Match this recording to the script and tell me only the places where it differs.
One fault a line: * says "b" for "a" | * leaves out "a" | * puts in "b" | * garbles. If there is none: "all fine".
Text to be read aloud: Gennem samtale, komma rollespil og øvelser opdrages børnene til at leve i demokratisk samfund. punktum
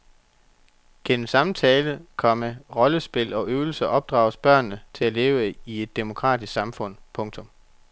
* puts in "et"